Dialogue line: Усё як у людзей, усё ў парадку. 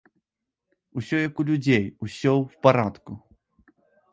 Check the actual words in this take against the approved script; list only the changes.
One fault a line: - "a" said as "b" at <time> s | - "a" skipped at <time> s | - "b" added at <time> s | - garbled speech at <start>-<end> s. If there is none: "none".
none